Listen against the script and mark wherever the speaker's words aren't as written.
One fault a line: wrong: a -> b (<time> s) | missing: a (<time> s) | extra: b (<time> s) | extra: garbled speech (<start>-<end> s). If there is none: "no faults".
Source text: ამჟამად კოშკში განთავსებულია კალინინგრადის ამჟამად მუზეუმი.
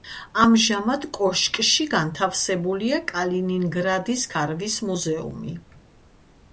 wrong: ამჟამად -> ქარვის (4.4 s)